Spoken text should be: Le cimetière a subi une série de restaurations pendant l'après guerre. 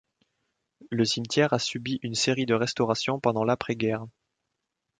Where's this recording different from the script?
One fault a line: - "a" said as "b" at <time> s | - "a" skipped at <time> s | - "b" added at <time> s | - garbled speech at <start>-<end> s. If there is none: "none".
none